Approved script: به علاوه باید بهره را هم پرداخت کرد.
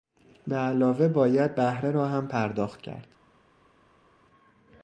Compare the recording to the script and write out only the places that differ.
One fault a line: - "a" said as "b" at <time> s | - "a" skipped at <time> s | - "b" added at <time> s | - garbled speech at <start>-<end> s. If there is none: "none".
none